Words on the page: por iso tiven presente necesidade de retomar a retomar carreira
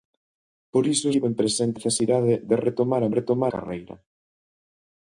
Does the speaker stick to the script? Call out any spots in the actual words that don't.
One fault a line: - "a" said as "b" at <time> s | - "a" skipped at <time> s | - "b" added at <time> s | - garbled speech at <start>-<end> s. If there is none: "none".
none